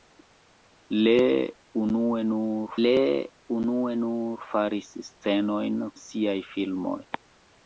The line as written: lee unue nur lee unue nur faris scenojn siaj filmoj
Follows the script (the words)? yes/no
yes